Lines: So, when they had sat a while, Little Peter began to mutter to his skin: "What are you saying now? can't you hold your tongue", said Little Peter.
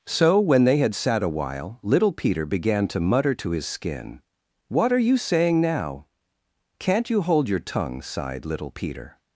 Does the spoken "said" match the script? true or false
false